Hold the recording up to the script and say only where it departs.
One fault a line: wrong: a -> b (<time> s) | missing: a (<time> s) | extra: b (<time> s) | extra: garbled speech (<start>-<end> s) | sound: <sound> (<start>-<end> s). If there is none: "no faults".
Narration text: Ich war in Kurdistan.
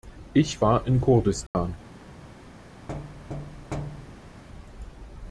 sound: dropout (1.5-1.5 s)
sound: thud (2.9-4.4 s)